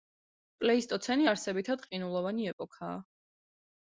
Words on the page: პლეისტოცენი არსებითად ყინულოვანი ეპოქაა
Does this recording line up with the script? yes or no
yes